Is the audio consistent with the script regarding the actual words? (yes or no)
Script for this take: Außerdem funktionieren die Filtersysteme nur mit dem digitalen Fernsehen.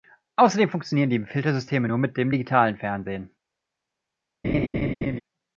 yes